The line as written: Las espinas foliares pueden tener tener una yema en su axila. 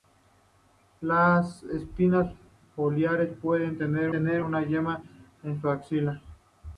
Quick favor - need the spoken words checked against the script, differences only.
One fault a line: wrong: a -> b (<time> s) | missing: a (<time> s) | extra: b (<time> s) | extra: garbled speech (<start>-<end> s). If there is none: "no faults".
no faults